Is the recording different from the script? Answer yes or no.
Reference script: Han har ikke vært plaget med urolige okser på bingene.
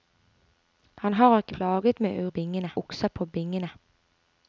yes